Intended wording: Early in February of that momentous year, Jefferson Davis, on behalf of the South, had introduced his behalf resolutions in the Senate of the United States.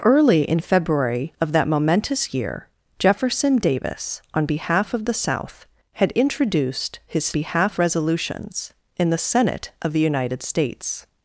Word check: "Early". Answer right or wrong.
right